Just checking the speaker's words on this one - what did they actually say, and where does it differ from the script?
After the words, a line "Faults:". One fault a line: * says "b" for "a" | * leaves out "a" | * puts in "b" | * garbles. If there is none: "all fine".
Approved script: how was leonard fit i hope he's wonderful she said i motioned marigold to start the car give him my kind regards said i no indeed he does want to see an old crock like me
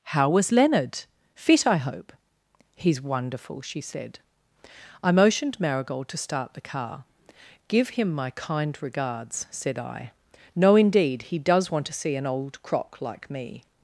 how was leonard fit i hope he's wonderful she said i motioned marigold to start the car give him my kind regards said i no indeed he does want to see an old crock like me
Faults:
all fine